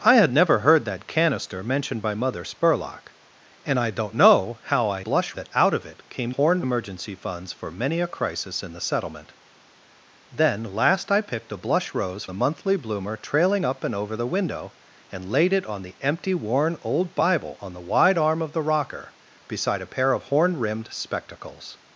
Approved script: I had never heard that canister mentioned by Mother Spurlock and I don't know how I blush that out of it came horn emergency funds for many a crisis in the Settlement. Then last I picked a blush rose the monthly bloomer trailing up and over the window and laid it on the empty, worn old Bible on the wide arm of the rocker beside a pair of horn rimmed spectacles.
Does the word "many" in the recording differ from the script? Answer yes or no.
no